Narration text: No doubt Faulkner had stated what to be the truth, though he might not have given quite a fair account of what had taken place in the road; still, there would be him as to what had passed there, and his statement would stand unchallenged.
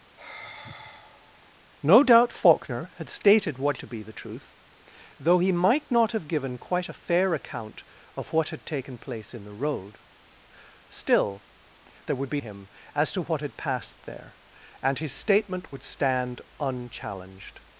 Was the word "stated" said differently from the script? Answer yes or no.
no